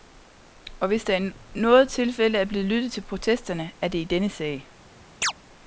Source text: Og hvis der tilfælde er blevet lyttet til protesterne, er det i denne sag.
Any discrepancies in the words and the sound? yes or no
yes